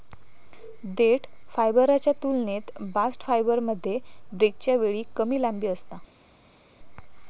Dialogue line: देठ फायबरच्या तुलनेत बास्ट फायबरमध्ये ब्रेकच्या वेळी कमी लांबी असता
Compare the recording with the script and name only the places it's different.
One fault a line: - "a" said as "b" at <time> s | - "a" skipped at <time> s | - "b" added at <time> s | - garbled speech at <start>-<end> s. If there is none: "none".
none